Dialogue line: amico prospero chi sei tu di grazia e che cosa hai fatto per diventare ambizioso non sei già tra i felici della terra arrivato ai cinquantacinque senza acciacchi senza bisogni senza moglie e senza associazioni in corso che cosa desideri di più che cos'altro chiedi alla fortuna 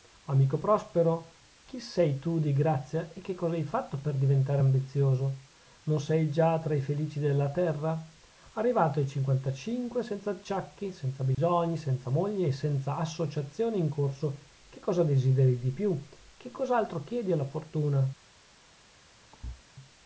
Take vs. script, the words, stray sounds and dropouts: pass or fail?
fail